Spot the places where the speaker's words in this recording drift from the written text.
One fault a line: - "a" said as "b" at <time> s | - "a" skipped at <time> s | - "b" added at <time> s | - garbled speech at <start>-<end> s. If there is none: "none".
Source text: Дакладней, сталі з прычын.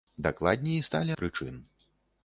none